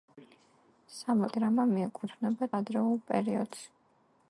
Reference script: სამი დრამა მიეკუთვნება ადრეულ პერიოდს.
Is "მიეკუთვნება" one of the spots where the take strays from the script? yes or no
no